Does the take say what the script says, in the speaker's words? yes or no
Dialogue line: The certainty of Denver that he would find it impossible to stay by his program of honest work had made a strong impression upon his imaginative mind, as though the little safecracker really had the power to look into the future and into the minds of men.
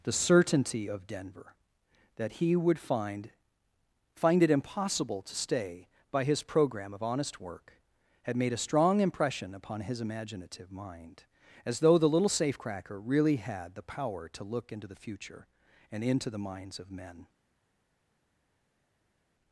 no